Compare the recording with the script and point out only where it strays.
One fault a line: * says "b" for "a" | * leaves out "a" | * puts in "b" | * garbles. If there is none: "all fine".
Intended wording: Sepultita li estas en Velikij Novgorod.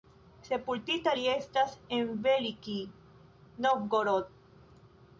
all fine